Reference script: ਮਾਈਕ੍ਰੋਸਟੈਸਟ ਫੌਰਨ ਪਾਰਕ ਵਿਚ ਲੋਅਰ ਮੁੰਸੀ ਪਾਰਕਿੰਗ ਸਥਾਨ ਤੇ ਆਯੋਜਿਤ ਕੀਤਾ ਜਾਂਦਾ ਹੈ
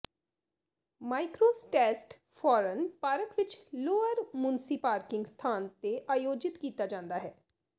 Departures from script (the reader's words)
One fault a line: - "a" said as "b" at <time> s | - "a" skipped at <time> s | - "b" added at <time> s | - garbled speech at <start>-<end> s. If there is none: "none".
none